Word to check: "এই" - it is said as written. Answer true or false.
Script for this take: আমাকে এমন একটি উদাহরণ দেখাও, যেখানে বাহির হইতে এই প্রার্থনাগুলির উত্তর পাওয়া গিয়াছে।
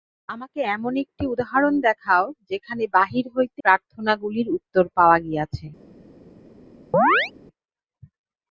false